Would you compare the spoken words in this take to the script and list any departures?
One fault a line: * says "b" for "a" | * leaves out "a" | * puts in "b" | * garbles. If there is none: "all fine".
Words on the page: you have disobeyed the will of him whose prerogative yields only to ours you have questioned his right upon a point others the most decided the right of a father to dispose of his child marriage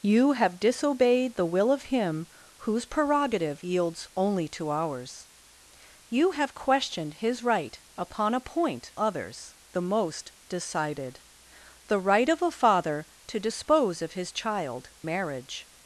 all fine